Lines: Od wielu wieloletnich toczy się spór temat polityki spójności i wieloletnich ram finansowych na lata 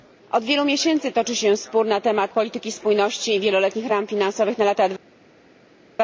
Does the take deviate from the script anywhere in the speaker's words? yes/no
yes